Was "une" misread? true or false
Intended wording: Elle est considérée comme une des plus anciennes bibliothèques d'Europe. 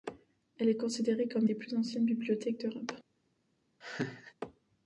true